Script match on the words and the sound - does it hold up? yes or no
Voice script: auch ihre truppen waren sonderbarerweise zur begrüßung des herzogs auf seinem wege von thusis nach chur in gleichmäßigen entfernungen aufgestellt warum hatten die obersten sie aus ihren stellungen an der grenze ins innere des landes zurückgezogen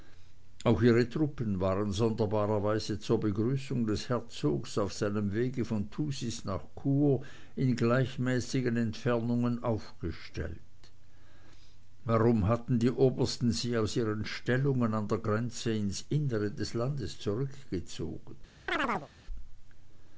no